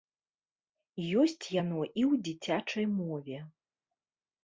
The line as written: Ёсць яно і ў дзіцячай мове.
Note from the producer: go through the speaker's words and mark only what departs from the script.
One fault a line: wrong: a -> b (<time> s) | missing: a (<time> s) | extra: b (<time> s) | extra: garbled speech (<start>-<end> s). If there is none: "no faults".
no faults